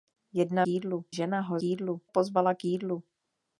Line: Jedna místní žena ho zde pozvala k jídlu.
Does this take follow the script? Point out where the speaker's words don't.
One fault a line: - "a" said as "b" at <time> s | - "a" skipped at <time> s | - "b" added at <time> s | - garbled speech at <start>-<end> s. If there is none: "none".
- "místní" said as "jídlu" at 0.7 s
- "zde" said as "jídlu" at 1.6 s